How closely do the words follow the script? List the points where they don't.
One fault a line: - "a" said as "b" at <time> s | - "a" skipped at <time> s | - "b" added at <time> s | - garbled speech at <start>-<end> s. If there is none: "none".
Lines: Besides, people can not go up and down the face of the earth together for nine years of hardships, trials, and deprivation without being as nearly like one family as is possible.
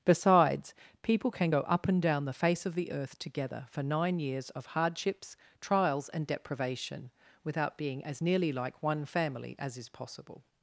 - "not" skipped at 1.5 s